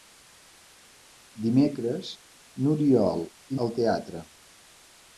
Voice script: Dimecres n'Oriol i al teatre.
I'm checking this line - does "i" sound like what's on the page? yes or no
yes